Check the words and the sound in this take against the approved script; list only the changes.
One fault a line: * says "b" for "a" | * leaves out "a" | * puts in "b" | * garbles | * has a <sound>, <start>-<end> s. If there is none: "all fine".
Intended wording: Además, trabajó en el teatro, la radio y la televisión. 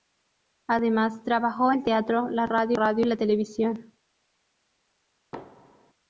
* leaves out "en"
* puts in "radio"
* has a thud, 5.3-5.9 s